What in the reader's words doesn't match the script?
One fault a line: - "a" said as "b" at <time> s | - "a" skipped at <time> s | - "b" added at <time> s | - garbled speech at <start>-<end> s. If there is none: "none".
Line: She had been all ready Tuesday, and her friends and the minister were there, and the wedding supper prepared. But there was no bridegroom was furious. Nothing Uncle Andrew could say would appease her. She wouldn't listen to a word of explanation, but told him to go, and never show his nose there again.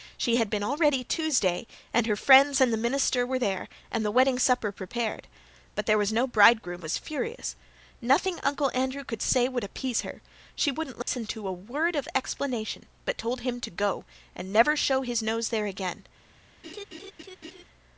none